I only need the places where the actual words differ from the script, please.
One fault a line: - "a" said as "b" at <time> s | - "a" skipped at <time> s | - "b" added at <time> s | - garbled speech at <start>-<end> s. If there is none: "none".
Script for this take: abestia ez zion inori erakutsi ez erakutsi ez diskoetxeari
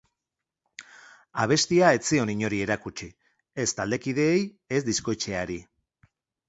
- "erakutsi" said as "taldekideei" at 3.8 s